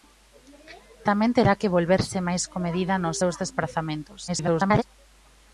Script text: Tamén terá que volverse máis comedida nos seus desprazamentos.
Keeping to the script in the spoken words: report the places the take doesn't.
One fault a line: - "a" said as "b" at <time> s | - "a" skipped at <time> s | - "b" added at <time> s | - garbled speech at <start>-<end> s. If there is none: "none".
- garbled speech at 4.3-4.8 s